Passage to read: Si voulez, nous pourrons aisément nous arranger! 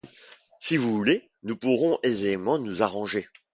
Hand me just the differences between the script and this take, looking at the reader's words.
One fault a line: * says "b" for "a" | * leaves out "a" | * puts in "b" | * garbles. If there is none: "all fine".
* puts in "vous"